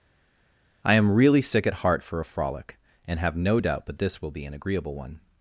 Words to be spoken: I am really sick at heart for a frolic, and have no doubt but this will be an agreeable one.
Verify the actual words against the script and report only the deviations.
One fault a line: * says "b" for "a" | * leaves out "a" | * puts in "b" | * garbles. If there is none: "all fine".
all fine